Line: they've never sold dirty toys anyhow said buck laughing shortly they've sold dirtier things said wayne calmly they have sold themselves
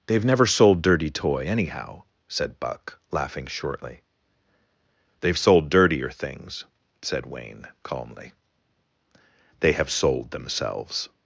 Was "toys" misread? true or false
true